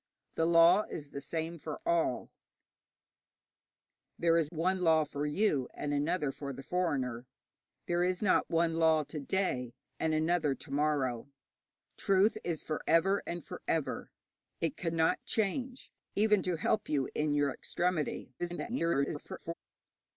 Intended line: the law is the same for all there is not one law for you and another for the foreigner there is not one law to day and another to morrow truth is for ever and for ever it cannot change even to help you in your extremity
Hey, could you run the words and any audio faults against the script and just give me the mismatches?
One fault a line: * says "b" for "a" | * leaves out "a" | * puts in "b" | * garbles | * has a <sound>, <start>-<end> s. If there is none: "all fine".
* leaves out "not"
* garbles